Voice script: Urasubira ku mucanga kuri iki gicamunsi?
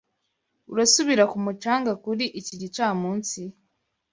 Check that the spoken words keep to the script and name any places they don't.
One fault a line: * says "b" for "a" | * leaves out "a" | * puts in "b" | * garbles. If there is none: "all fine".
all fine